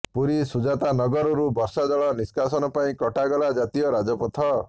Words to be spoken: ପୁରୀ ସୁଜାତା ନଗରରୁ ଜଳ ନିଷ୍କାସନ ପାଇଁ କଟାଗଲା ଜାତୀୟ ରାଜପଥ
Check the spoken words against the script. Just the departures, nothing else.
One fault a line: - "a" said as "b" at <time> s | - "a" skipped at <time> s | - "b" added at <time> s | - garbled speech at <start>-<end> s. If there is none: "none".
- "ବର୍ଷା" added at 1.6 s